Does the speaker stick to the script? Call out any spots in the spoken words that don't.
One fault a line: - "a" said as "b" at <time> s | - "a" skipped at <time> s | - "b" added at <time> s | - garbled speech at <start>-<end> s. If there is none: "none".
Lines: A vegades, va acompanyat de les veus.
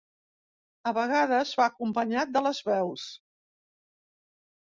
none